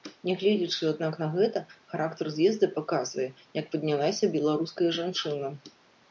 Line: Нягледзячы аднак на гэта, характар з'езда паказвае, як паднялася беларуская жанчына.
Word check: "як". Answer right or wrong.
right